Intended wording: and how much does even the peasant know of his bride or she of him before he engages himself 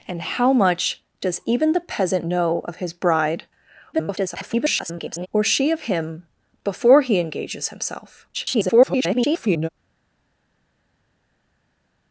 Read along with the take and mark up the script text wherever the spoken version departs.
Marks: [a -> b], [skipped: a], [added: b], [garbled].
and how much does even the peasant know of his bride [garbled] or she of him before he engages himself [garbled]